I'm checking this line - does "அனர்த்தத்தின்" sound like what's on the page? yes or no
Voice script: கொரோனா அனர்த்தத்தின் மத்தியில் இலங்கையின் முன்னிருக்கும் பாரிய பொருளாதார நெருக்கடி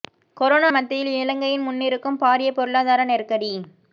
no